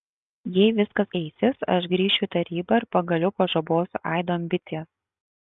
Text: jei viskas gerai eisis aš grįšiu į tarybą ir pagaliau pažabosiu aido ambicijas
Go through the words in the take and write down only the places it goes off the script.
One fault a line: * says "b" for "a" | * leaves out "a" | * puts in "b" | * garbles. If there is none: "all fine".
* leaves out "gerai"